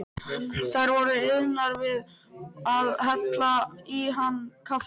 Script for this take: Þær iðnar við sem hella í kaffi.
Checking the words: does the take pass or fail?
fail